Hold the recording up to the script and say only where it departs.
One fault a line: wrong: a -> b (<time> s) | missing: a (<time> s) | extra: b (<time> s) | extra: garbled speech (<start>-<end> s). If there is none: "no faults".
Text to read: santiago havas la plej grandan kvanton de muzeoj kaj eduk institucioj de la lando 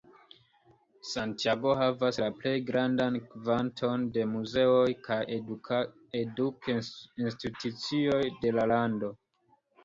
no faults